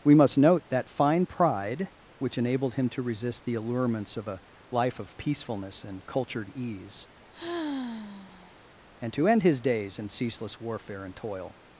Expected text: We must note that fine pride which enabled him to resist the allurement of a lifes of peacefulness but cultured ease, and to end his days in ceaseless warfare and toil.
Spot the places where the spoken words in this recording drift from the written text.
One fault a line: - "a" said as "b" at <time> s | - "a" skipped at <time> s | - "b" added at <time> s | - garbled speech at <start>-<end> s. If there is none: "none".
- "allurement" said as "allurements" at 3.5 s
- "lifes" said as "life" at 4.7 s
- "but" said as "and" at 5.8 s